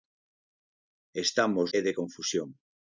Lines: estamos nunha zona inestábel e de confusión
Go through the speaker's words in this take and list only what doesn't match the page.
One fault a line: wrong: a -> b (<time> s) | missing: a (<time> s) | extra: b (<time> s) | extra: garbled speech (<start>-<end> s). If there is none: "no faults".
missing: nunha zona inestábel (1.7 s)